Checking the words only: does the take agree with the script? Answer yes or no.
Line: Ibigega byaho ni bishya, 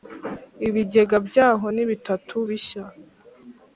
no